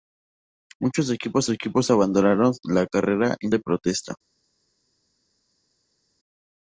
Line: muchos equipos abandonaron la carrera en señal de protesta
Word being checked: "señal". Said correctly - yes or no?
no